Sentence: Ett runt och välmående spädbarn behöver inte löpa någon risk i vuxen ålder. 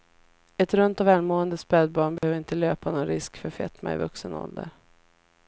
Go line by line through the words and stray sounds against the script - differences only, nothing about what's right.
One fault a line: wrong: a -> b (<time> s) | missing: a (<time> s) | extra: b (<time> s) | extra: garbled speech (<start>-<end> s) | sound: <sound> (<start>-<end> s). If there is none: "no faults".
sound: dropout (2.2-2.2 s)
extra: för fetma (3.4 s)